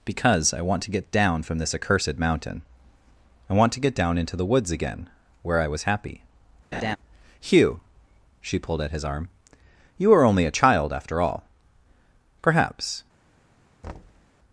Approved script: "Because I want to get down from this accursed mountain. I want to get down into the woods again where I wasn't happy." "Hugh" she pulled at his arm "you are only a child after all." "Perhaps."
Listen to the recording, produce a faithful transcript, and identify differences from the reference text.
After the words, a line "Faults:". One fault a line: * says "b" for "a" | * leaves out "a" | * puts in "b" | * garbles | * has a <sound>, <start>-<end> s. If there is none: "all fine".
"Because I want to get down from this accursed mountain. I want to get down into the woods again where I was happy." "Hugh" she pulled at his arm "you are only a child after all." "Perhaps."
Faults:
* says "was" for "wasn't"
* has a laugh, 6.7-7.0 s
* has a thud, 13.8-14.3 s